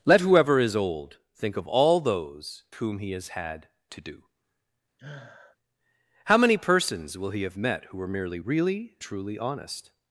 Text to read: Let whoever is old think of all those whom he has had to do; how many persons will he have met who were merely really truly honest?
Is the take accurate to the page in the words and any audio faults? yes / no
no